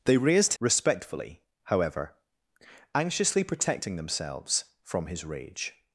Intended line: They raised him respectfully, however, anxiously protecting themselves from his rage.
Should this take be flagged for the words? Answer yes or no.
yes